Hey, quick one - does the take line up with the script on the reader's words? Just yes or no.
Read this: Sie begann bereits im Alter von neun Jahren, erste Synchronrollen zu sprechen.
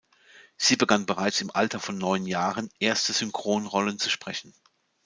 yes